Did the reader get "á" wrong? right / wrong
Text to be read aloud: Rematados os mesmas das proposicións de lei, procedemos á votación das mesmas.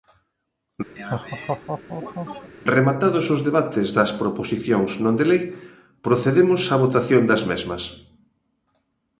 right